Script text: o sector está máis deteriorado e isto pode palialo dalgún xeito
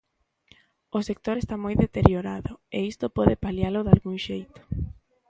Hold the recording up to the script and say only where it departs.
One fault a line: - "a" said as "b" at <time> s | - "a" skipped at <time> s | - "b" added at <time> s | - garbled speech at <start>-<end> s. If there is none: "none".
- "máis" said as "moi" at 1.6 s